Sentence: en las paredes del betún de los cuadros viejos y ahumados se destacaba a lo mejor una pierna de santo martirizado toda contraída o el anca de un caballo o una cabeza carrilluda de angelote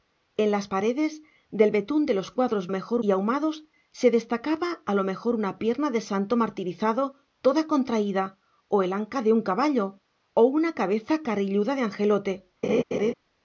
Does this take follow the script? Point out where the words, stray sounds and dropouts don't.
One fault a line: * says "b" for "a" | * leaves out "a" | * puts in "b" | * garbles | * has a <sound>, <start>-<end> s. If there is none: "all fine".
* says "mejor" for "viejos"
* has a laugh, 12.6-13.1 s